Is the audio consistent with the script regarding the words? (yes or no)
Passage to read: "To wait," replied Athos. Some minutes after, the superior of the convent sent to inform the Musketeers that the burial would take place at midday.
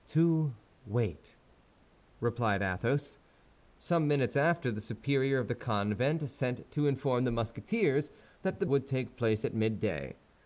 no